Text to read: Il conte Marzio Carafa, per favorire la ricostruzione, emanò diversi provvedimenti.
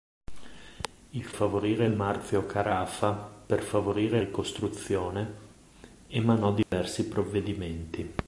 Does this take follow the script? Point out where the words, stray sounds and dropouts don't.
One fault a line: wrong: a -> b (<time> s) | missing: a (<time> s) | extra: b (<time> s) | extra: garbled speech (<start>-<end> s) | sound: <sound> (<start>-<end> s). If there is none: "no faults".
wrong: conte -> favorire (1.3 s)
missing: la (4.2 s)
sound: dropout (6.6-6.7 s)